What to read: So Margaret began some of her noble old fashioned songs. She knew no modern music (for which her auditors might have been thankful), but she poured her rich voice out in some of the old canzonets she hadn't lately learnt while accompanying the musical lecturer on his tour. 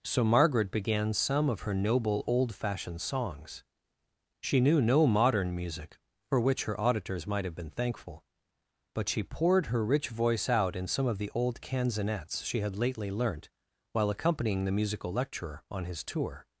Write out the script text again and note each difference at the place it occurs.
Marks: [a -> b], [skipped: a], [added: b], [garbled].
So Margaret began some of her noble old fashioned songs. She knew no modern music (for which her auditors might have been thankful), but she poured her rich voice out in some of the old canzonets she [hadn't -> had] lately learnt while accompanying the musical lecturer on his tour.